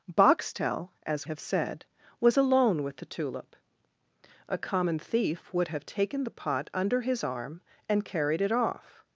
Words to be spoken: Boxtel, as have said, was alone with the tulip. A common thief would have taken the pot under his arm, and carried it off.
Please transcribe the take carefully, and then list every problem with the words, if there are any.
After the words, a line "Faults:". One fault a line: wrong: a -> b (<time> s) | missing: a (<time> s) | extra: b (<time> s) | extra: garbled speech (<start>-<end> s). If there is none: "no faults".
Boxtel, as have said, was alone with the tulip. A common thief would have taken the pot under his arm, and carried it off.
Faults:
no faults